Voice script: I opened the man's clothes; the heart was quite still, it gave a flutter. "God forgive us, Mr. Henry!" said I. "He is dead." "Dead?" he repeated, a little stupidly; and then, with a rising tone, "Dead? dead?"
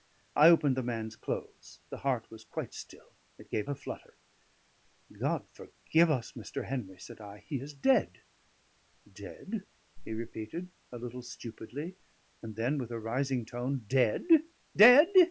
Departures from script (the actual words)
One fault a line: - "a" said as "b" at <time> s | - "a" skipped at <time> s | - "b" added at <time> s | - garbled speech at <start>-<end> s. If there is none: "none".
none